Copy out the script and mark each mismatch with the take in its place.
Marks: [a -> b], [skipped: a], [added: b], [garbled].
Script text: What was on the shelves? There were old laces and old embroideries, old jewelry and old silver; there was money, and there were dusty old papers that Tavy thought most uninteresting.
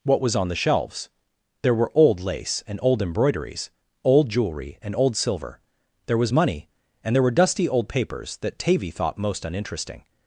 What was on the shelves? There were old [laces -> lace] and old embroideries, old jewelry and old silver; there was money, and there were dusty old papers that Tavy thought most uninteresting.